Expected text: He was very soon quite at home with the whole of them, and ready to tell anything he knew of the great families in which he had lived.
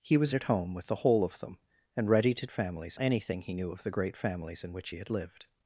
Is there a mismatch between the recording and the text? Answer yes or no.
yes